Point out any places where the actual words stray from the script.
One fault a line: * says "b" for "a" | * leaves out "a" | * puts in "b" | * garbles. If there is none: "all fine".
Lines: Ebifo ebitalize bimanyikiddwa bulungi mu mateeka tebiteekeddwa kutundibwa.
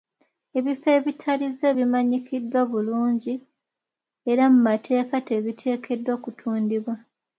* puts in "era"